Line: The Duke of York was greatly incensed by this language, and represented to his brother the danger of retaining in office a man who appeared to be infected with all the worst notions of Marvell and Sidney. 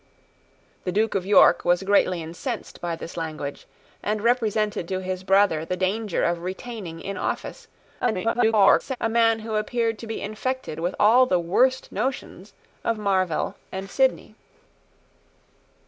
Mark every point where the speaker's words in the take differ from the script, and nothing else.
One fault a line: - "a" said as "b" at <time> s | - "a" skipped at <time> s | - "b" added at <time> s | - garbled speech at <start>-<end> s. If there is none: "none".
- garbled speech at 8.0-9.0 s